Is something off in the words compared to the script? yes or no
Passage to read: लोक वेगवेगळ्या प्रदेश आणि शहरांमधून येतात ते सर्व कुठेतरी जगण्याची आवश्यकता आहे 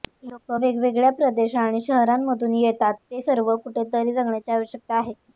no